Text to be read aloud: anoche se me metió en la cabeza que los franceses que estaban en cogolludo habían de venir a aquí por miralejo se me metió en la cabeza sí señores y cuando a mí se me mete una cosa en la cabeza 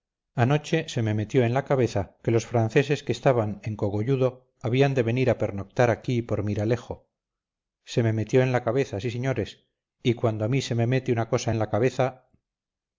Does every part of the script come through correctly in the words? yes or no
no